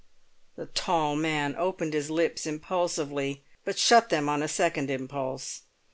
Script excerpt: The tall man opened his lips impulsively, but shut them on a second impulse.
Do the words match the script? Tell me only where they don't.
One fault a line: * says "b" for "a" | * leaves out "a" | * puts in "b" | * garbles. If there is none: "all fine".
all fine